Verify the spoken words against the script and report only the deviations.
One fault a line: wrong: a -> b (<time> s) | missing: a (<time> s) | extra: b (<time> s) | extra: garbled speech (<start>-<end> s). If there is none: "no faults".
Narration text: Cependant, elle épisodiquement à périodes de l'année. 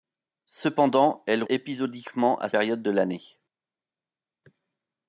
no faults